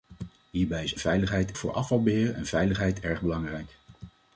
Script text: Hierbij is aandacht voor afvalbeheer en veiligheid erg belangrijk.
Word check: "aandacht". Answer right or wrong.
wrong